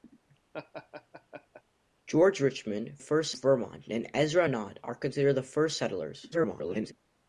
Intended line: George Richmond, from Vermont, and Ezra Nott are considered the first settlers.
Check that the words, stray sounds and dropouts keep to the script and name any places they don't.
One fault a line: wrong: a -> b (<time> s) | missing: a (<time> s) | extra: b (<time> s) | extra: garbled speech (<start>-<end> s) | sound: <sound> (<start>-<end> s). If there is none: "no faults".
sound: laugh (0.5-1.6 s)
wrong: from -> first (3.0 s)
extra: garbled speech (6.3-6.9 s)